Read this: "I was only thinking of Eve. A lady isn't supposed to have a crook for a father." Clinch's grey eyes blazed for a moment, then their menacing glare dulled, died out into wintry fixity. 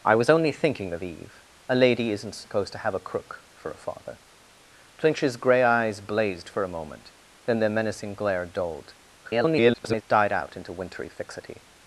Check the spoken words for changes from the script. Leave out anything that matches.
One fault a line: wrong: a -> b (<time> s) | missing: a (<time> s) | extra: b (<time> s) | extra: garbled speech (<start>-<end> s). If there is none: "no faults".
extra: garbled speech (9.2-10.0 s)